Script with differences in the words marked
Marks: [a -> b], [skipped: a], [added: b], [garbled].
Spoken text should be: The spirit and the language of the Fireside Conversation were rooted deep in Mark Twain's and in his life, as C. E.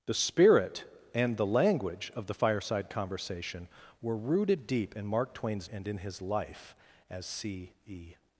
The spirit and the language of the Fireside Conversation were rooted deep in Mark Twain's and in his life, as C. E.